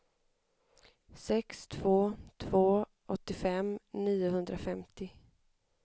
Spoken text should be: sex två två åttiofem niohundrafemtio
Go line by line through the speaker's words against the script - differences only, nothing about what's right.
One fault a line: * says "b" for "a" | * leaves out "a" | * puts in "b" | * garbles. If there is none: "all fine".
all fine